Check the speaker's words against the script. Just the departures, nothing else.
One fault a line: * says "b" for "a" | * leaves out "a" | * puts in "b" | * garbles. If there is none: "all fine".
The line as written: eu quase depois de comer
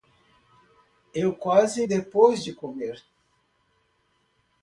all fine